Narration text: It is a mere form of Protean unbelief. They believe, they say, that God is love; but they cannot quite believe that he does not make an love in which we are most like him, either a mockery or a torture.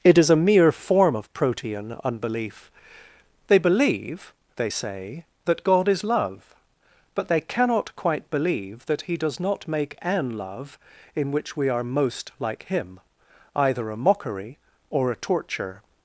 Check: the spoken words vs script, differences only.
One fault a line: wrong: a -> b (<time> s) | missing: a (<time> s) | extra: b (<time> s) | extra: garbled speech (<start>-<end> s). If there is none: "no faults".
no faults